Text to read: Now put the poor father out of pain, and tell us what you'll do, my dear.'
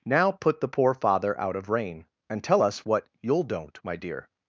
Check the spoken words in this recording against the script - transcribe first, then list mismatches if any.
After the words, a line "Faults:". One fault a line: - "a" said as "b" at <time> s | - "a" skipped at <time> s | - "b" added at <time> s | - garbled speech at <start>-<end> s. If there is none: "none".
Now put the poor father out of rain, and tell us what you'll don't, my dear.'
Faults:
- "pain" said as "rain" at 1.7 s
- "do" said as "don't" at 3.4 s